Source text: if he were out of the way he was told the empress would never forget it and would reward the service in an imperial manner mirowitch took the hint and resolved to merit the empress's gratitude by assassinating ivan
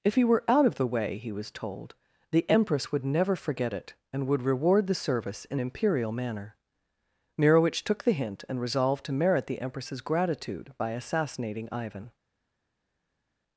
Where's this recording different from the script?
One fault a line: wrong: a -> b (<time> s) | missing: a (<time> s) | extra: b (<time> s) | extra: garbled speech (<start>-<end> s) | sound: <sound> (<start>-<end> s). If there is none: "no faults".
missing: an (5.6 s)